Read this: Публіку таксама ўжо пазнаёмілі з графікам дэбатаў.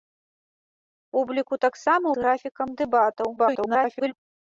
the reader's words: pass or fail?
fail